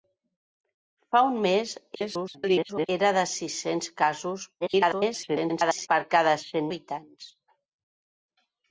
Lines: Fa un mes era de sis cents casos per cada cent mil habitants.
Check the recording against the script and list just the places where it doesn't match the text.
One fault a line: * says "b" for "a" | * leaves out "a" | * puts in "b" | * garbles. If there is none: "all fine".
* garbles
* garbles
* leaves out "mil"